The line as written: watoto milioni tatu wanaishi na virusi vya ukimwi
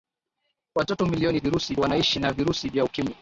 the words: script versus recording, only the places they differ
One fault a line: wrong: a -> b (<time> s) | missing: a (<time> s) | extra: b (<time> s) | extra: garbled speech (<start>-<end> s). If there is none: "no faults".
wrong: tatu -> virusi (1.4 s)